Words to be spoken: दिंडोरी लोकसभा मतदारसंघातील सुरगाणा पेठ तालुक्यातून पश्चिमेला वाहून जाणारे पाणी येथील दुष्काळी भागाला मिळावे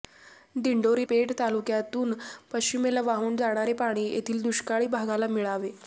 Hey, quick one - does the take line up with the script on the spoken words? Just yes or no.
no